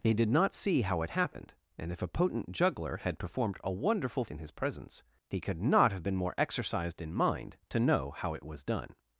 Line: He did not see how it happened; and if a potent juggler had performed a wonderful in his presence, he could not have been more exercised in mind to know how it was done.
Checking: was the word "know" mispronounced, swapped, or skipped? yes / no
no